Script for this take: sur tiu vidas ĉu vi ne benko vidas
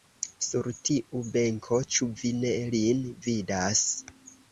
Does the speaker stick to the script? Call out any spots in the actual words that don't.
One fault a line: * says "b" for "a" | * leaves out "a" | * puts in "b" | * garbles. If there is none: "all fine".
* says "benko" for "vidas"
* says "lin" for "benko"